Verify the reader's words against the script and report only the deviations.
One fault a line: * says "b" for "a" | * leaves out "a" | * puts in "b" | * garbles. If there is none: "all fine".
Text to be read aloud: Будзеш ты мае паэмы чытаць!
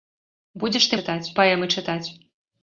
* says "чытаць" for "мае"